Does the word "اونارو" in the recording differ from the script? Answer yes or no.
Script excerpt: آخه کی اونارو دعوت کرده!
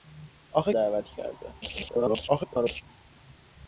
yes